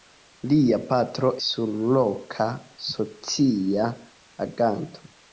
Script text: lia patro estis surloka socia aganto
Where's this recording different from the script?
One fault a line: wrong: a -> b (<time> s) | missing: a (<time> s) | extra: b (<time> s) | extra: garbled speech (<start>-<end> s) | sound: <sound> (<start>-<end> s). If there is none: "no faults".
missing: estis (1.3 s)